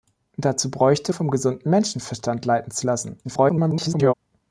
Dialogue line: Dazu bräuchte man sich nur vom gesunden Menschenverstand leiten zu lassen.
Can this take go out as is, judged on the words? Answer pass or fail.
fail